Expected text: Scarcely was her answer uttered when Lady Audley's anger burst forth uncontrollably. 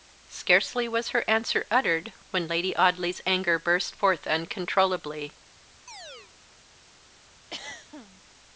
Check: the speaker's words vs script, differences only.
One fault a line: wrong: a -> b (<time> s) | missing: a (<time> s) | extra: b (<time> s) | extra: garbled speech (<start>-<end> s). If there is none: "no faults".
no faults